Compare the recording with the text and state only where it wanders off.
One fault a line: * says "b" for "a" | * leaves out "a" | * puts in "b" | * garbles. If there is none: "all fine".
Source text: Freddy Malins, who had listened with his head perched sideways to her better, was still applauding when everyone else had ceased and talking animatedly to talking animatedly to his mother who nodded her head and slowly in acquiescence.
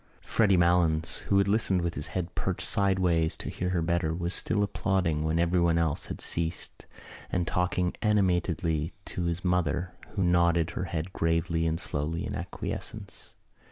* puts in "hear"
* leaves out "talking animatedly to"
* puts in "gravely"